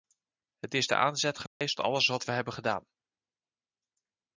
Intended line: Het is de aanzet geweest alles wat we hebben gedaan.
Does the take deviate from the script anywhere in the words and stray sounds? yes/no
yes